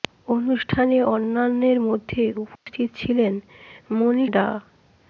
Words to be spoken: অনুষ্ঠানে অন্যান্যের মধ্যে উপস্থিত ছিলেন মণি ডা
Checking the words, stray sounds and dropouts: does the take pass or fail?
fail